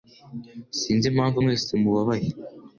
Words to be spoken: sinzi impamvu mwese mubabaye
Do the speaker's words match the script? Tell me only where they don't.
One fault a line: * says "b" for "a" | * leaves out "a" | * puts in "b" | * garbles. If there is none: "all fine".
all fine